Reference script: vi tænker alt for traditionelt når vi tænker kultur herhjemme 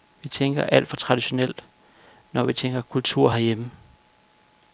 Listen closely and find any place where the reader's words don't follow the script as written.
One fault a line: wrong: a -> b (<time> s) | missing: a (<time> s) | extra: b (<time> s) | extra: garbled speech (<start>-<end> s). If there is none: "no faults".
no faults